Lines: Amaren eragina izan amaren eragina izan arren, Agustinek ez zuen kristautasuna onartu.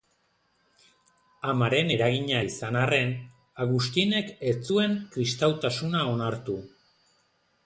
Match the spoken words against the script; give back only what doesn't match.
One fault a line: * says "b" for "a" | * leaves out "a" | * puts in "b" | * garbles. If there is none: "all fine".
* leaves out "amaren eragina izan"